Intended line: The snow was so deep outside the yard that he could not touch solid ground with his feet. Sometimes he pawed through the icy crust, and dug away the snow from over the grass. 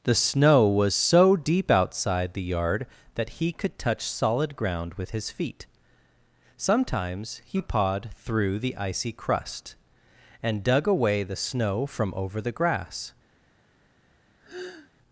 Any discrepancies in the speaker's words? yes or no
yes